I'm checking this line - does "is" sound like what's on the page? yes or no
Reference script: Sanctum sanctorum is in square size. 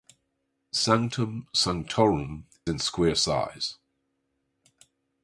no